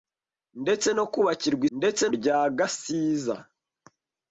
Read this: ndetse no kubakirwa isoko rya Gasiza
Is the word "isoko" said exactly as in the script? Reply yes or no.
no